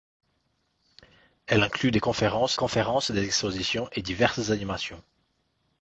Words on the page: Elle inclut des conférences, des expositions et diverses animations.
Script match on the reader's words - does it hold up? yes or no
no